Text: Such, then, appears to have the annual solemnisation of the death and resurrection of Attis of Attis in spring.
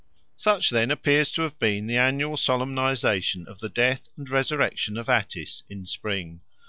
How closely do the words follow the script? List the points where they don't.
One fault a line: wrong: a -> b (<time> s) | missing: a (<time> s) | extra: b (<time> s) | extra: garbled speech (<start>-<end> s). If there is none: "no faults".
extra: been (1.6 s)
missing: of Attis (5.6 s)